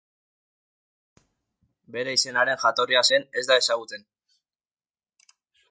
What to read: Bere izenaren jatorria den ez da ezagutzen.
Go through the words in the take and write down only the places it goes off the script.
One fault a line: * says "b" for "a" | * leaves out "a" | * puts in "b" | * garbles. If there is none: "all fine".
all fine